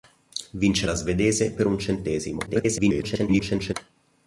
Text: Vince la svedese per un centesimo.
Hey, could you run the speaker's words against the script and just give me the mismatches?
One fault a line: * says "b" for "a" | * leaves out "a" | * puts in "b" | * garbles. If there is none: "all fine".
* garbles